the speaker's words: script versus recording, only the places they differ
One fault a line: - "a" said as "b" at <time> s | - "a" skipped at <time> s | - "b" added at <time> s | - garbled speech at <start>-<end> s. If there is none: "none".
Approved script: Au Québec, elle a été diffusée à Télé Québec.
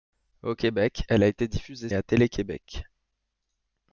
none